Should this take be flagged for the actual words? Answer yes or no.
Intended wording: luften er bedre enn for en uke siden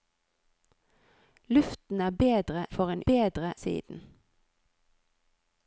yes